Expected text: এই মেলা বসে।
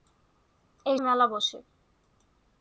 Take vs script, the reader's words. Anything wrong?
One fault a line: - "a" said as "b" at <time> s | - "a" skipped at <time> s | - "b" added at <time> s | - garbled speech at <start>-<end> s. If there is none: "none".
none